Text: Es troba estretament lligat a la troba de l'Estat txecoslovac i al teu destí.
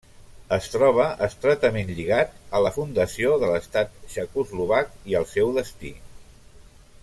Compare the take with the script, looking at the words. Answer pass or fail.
fail